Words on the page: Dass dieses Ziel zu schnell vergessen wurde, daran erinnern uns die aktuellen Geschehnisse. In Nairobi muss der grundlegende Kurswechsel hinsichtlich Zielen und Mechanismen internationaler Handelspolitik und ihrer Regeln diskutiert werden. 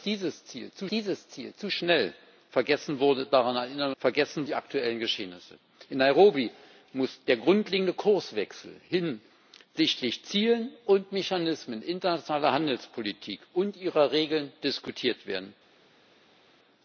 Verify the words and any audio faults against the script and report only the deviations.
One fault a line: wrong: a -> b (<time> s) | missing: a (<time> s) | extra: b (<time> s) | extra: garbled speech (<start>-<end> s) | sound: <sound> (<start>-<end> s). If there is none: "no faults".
extra: dieses Ziel zu (0.9 s)
wrong: uns -> vergessen (4.0 s)